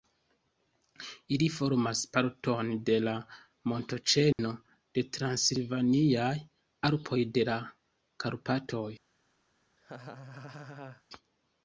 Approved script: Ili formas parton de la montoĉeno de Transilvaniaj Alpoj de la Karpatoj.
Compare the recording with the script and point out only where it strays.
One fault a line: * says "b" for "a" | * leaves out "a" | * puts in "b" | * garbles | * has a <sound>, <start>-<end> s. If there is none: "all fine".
* has a dropout, 4.3-4.4 s
* has a laugh, 9.8-11.0 s